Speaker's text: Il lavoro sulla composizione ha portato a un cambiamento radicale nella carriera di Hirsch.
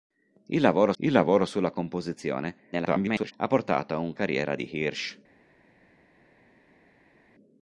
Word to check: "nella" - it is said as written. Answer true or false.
false